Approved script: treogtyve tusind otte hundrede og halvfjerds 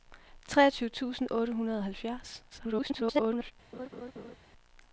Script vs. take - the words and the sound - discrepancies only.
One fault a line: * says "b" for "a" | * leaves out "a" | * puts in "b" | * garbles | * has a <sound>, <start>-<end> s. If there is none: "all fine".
* garbles
* has a laugh, 3.7-4.4 s